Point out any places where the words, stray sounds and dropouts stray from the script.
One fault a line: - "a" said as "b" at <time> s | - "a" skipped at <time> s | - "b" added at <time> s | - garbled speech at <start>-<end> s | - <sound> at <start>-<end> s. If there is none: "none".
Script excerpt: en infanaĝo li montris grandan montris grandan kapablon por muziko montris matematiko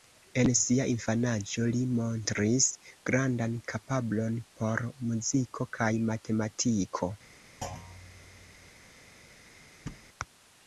- "sia" added at 0.6 s
- "montris grandan" skipped at 3.5 s
- "montris" said as "kaj" at 5.8 s
- thud at 7.6-8.7 s
- thud at 9.9-10.1 s